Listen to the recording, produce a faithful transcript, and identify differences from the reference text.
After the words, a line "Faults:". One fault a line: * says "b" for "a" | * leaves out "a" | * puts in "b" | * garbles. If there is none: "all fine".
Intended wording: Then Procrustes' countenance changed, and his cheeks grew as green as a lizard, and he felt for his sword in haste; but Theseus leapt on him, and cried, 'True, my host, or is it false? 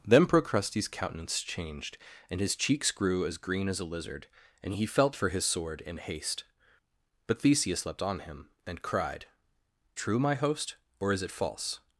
Then Procrustes' countenance changed, and his cheeks grew as green as a lizard, and he felt for his sword in haste; but Theseus leapt on him, and cried, 'True, my host, or is it false?
Faults:
all fine